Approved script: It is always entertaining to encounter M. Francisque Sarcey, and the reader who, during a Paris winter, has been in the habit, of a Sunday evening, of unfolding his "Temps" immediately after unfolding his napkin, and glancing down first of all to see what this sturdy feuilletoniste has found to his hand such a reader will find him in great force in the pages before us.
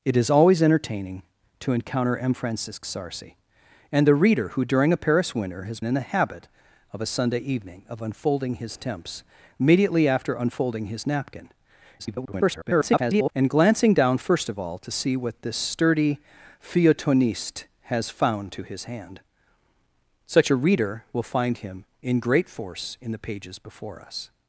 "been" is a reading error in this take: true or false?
true